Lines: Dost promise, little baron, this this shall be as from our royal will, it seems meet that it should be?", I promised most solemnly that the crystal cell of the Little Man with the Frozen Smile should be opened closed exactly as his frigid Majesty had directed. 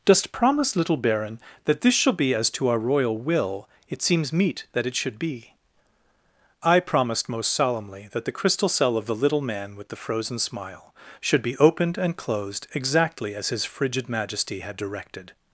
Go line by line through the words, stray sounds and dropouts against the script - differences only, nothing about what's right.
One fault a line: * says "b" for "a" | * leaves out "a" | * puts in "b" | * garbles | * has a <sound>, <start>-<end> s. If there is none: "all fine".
* says "that" for "this"
* says "to" for "from"
* puts in "and"